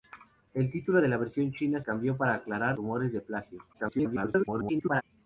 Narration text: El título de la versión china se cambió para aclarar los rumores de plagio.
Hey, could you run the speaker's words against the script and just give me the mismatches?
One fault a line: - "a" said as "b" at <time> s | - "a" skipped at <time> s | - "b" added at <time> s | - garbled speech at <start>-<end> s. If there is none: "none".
- "se" skipped at 1.8 s
- "los" skipped at 2.8 s
- garbled speech at 3.7-5.0 s